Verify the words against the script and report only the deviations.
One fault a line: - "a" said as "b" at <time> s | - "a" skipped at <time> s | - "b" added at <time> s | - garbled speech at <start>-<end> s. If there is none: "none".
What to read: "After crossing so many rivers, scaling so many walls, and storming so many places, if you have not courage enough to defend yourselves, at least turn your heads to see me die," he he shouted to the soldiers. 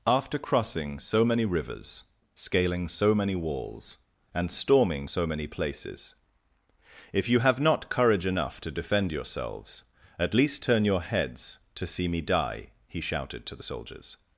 - "he" skipped at 13.0 s